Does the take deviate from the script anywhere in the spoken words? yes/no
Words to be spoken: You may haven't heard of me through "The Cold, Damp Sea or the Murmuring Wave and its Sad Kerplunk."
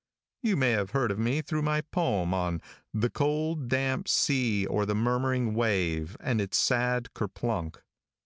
yes